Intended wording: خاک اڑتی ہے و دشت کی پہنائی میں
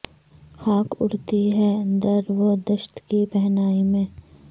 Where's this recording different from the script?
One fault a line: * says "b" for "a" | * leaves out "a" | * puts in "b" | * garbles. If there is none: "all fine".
* puts in "در"